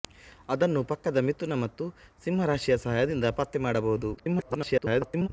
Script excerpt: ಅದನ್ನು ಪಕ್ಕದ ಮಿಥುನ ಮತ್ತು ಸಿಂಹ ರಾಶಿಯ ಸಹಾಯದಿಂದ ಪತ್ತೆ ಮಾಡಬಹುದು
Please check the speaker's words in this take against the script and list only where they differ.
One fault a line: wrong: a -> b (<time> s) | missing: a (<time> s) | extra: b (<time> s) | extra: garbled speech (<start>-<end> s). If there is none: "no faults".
extra: garbled speech (4.2-5.3 s)